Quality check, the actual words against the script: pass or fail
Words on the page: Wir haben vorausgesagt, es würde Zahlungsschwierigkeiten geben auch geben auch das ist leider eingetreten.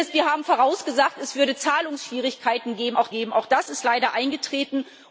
pass